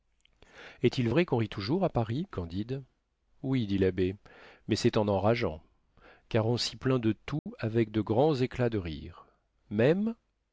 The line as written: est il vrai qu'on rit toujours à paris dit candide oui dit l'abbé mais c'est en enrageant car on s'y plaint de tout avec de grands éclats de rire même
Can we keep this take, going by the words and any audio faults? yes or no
no